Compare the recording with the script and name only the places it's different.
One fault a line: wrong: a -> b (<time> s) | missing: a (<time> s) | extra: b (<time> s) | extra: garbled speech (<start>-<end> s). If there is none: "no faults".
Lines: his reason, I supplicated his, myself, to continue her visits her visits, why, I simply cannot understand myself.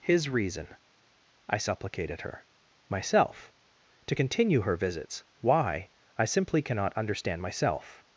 wrong: his -> her (2.2 s)
missing: her visits (5.2 s)